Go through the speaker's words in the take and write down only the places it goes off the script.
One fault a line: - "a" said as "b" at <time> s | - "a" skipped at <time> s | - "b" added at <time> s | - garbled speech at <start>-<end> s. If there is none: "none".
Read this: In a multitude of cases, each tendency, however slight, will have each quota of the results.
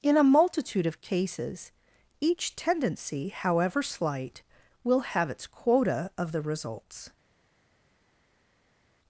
- "each" said as "its" at 5.3 s